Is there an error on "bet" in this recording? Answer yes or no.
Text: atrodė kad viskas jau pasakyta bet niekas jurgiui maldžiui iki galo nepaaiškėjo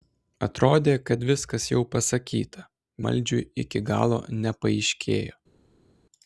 yes